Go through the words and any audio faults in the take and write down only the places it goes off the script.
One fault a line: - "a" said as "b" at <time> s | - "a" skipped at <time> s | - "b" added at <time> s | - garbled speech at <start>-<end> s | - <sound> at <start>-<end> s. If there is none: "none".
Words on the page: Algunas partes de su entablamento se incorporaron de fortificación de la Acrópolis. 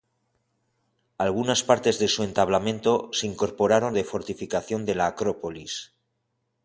none